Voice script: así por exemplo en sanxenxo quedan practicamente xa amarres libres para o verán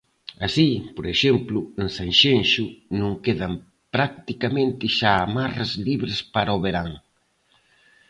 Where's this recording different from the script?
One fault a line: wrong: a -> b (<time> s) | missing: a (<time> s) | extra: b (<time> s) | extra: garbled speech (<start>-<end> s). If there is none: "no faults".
extra: non (3.0 s)